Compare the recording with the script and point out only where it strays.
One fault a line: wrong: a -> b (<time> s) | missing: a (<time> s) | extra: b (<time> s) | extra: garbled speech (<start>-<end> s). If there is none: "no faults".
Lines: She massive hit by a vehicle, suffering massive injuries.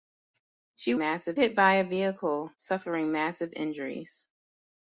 no faults